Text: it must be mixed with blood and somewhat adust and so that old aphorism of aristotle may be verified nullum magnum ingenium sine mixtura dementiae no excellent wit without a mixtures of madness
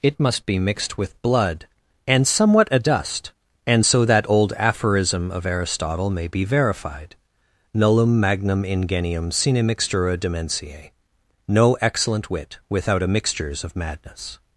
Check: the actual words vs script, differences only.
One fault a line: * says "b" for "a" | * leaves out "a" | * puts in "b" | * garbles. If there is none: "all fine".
all fine